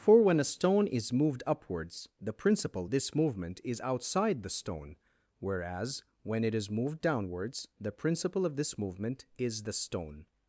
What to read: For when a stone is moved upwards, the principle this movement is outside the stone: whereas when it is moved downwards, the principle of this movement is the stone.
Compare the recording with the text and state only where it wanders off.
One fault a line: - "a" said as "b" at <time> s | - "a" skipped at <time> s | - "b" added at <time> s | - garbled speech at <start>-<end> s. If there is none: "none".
none